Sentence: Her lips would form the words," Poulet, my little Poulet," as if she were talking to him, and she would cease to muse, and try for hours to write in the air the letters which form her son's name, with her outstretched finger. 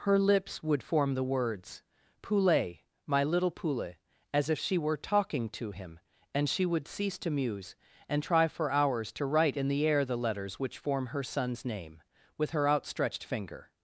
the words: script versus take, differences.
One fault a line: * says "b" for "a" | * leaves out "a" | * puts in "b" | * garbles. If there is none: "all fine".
all fine